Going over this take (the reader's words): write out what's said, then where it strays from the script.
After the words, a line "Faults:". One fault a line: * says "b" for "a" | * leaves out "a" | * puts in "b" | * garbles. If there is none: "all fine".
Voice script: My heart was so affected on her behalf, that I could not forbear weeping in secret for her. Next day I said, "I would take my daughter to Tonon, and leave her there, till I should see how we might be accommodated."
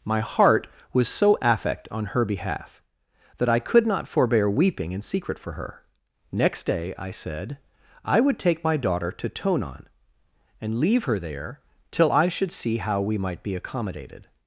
My heart was so affect on her behalf, that I could not forbear weeping in secret for her. Next day I said, "I would take my daughter to Tonon, and leave her there, till I should see how we might be accommodated."
Faults:
* says "affect" for "affected"